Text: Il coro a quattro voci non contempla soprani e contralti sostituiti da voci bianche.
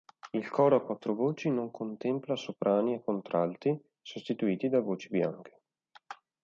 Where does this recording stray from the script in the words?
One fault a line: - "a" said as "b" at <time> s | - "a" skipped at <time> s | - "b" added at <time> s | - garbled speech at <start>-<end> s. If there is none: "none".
none